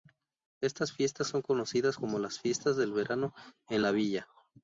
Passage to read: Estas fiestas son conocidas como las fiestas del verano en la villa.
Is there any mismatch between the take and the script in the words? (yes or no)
no